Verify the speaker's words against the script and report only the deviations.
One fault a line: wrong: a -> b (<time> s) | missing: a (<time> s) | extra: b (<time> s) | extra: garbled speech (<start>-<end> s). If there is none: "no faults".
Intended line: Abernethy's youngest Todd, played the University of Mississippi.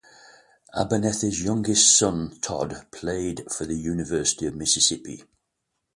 extra: son (1.9 s)
extra: for (3.5 s)